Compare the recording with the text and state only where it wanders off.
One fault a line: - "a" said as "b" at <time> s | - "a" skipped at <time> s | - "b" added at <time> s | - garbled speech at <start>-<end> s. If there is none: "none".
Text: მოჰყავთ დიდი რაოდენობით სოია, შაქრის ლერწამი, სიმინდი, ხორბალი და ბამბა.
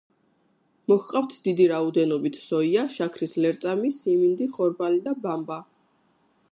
none